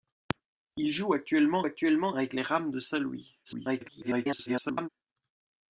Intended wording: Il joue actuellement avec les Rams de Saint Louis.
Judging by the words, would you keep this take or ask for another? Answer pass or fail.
fail